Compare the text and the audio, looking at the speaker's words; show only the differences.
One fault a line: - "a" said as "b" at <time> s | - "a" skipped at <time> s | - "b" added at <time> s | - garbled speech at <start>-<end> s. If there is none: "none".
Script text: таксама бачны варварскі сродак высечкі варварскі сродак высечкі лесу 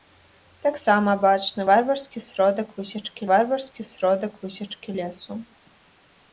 none